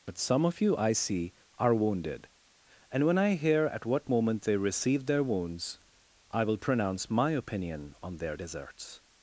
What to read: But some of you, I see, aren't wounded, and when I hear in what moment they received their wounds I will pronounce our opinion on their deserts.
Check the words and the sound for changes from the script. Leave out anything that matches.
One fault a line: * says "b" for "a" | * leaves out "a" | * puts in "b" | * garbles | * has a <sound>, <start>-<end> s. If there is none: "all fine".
* says "are" for "aren't"
* says "at" for "in"
* says "my" for "our"